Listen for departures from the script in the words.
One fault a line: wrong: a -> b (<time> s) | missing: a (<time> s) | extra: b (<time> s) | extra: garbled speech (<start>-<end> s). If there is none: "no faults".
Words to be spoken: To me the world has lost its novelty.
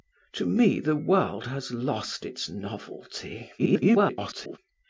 extra: garbled speech (3.6-4.6 s)